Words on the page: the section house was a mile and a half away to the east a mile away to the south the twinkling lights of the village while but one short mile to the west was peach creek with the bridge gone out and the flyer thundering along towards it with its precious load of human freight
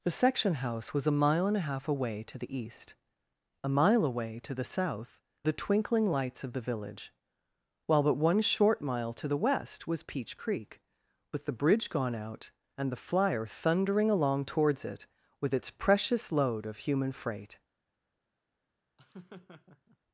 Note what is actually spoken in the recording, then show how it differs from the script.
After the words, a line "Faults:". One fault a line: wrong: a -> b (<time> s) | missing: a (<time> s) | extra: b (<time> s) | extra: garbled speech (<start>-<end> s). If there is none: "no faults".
the section house was a mile and a half away to the east a mile away to the south the twinkling lights of the village while but one short mile to the west was peach creek with the bridge gone out and the flyer thundering along towards it with its precious load of human freight
Faults:
no faults